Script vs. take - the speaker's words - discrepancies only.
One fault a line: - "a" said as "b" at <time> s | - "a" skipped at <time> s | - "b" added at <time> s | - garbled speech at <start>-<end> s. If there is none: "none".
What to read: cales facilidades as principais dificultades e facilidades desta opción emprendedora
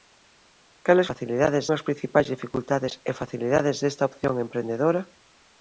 none